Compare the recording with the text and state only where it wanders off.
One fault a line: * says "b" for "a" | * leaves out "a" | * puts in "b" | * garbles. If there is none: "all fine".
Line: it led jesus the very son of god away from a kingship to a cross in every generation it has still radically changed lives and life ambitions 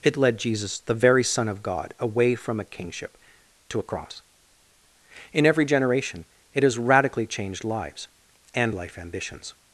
* leaves out "still"